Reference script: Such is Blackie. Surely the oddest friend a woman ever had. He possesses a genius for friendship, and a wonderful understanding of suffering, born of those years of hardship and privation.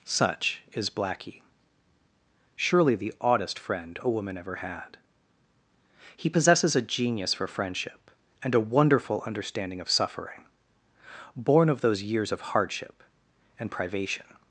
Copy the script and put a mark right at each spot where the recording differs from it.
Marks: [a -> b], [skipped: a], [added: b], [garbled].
Such is Blackie. Surely the oddest friend a woman ever had. He possesses a genius for friendship, and a wonderful understanding of suffering, born of those years of hardship and privation.